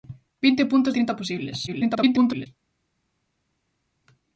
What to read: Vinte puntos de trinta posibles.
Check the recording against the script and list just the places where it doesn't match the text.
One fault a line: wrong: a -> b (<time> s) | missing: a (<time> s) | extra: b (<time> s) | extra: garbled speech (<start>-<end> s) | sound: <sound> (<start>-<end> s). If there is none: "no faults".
missing: de (0.9 s)
extra: garbled speech (1.7-2.5 s)